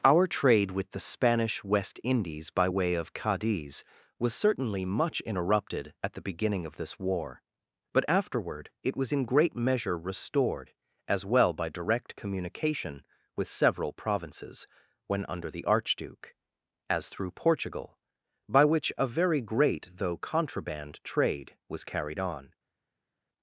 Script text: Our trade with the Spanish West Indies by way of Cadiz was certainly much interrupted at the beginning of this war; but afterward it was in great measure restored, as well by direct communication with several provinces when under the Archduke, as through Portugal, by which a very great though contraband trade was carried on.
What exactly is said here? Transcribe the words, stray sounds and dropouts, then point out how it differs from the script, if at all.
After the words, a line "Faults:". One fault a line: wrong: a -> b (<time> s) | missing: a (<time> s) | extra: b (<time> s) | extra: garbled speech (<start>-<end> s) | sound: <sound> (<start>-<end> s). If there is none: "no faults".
Our trade with the Spanish West Indies by way of Cadiz was certainly much interrupted at the beginning of this war; but afterward it was in great measure restored, as well by direct communication with several provinces when under the Archduke, as through Portugal, by which a very great though contraband trade was carried on.
Faults:
no faults